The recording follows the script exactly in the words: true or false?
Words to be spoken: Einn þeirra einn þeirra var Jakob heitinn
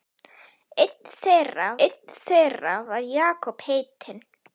true